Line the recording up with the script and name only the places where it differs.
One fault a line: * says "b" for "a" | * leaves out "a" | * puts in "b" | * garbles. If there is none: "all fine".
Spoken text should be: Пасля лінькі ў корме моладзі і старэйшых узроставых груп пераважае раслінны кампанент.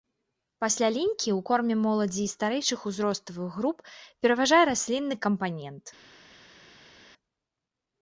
all fine